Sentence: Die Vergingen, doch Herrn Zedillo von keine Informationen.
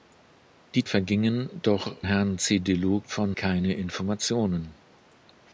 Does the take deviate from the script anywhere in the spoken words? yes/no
no